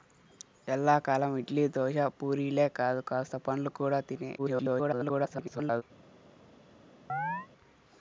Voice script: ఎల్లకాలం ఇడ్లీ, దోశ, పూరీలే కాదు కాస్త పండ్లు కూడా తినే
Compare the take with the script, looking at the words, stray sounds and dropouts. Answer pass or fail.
fail